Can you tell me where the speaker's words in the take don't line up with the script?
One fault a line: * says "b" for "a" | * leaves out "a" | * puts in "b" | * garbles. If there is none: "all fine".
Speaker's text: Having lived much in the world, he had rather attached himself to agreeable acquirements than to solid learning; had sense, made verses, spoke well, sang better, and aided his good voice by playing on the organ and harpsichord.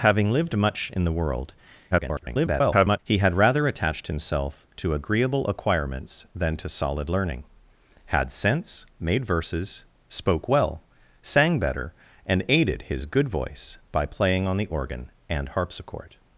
* garbles